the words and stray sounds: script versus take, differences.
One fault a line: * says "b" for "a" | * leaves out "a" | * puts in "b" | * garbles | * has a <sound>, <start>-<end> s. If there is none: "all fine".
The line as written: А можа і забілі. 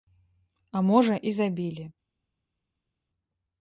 all fine